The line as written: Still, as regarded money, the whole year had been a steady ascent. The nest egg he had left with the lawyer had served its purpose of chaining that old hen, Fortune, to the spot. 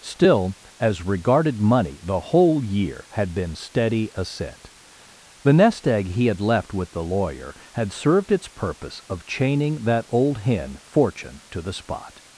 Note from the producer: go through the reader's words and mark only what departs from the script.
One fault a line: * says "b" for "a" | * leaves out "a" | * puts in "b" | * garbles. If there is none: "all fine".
* leaves out "a"